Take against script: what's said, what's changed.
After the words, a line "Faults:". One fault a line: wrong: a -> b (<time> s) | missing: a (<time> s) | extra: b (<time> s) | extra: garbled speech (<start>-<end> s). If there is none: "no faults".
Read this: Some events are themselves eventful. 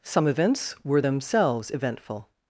Some events were themselves eventful.
Faults:
wrong: are -> were (0.8 s)